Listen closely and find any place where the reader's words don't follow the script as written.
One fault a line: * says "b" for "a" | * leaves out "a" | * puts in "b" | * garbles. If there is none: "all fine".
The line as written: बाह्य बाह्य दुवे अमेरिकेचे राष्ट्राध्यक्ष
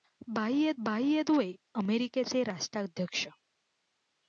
all fine